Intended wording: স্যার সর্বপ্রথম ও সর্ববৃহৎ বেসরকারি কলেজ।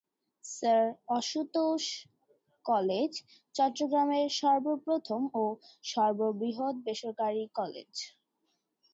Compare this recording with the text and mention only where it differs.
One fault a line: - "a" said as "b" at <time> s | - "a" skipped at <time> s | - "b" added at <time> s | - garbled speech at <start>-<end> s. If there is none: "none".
- "আশুতোষ কলেজ চট্টগ্রামের" added at 1.2 s